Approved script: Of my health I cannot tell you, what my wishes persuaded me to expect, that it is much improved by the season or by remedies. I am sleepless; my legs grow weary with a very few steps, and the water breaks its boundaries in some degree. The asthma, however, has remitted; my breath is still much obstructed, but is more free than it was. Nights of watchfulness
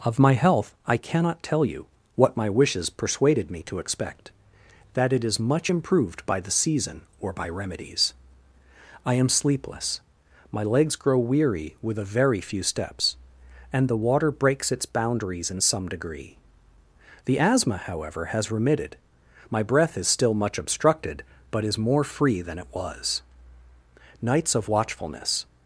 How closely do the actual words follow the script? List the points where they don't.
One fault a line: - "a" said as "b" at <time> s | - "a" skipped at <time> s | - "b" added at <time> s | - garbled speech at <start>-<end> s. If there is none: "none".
none